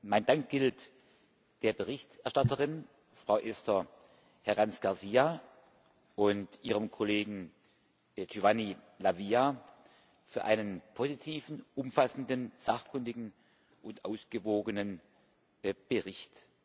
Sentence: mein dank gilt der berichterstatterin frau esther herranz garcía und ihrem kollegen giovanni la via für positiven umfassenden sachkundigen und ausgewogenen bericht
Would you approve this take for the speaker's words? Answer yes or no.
no